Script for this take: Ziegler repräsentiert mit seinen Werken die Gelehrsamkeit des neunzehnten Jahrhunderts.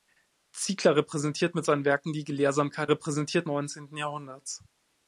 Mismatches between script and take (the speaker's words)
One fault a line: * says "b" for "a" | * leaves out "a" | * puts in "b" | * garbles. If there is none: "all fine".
* says "repräsentiert" for "des"